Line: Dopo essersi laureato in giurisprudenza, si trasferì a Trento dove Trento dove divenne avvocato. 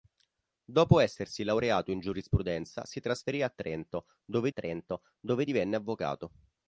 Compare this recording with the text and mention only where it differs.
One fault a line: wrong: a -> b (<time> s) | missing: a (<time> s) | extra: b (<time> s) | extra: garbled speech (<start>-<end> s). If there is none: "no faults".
no faults